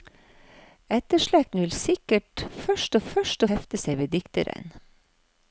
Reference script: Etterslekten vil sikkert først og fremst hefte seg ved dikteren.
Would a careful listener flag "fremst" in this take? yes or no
yes